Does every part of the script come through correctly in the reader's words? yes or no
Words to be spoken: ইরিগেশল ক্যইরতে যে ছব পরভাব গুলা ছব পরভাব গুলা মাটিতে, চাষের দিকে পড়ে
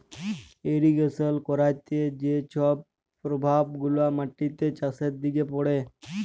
no